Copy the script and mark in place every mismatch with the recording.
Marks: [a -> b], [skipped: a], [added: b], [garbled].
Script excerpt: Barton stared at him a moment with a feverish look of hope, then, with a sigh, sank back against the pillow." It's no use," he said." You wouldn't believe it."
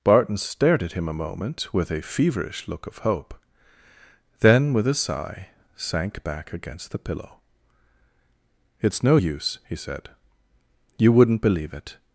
Barton stared at him a moment with a feverish look of hope, then, with a sigh, sank back against the pillow." It's no use," he said." You wouldn't believe it."